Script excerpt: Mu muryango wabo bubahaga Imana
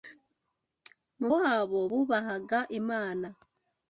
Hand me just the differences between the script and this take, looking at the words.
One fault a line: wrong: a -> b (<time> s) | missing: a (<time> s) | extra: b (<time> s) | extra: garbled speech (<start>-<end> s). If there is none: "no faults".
missing: muryango (1.3 s)